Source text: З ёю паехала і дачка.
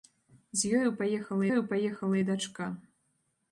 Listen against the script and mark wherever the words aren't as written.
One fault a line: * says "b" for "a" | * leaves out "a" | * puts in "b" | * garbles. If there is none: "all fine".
* puts in "ёю паехала"